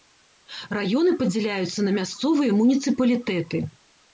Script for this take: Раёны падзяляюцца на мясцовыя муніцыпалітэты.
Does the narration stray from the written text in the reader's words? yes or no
no